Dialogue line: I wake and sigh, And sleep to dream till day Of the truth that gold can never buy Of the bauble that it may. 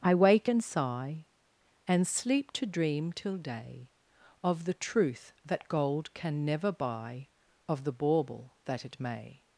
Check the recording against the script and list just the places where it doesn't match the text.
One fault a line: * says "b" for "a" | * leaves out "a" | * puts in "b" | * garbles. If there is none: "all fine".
all fine